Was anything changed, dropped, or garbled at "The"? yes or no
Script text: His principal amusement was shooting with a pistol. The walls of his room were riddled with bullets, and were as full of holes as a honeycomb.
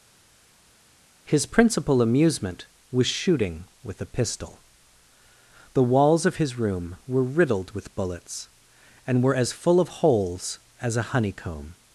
no